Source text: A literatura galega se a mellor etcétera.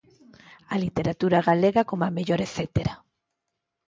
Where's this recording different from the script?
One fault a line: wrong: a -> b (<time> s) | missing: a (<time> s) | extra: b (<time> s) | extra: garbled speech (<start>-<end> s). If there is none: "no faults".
wrong: se -> como (1.9 s)